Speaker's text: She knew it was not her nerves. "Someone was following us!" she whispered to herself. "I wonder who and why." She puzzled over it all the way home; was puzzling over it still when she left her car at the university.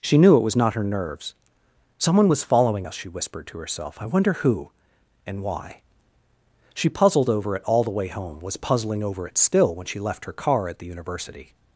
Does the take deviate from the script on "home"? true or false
false